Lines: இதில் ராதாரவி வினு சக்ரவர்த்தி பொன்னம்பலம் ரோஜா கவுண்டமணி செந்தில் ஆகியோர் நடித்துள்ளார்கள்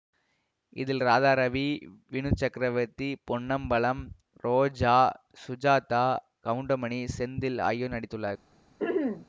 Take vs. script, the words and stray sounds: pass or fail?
fail